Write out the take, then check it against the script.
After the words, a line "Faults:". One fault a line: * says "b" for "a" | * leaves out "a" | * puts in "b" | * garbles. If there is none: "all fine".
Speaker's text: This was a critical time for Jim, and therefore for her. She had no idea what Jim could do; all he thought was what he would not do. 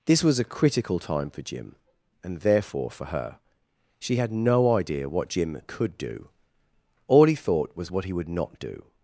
This was a critical time for Jim, and therefore for her. She had no idea what Jim could do; all he thought was what he would not do.
Faults:
all fine